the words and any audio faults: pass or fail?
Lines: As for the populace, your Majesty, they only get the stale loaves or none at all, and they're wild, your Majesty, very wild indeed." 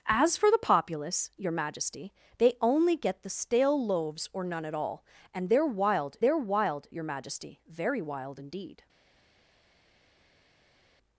fail